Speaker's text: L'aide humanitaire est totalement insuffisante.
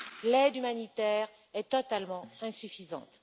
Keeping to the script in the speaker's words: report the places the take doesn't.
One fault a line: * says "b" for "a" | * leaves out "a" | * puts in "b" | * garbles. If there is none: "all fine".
all fine